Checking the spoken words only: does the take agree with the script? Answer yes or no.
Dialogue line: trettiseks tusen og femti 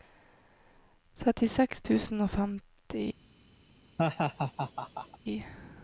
yes